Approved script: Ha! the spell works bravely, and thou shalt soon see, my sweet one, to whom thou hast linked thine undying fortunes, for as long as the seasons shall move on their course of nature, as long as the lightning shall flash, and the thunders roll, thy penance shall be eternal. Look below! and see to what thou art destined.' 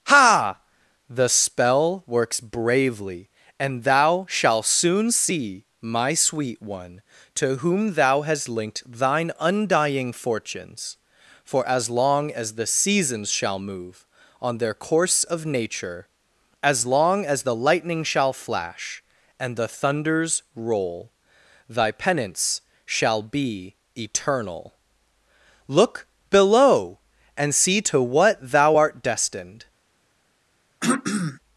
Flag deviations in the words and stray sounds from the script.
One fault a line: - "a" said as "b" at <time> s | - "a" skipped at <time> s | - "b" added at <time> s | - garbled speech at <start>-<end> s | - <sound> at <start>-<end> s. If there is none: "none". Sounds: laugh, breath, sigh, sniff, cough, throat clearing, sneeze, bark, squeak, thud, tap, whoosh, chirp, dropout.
- throat clearing at 30.8-31.4 s